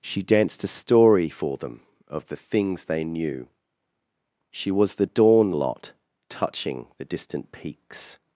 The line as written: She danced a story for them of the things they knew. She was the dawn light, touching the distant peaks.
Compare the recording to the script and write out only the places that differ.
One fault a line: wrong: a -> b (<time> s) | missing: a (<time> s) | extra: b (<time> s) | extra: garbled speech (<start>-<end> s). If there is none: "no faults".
wrong: light -> lot (5.5 s)